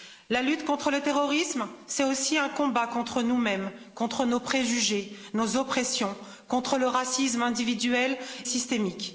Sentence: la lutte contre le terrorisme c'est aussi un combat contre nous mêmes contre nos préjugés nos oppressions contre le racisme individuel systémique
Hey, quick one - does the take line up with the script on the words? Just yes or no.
yes